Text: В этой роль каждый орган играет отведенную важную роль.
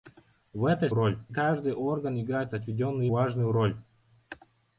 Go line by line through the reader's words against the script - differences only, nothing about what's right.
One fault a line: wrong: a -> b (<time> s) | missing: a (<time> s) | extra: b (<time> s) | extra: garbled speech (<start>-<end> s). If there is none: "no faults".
no faults